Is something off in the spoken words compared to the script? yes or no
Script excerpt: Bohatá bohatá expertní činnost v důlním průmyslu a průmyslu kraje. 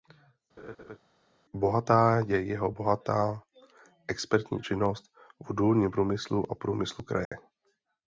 yes